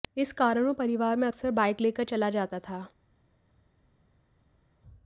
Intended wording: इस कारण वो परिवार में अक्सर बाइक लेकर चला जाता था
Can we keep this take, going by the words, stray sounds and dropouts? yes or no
yes